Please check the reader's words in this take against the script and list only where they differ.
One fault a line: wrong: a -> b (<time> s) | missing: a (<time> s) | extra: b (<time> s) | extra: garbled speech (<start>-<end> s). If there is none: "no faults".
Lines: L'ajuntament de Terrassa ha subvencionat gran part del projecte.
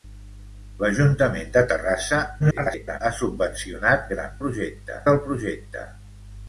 extra: garbled speech (2.4-3.0 s)
wrong: part -> projecte (4.4 s)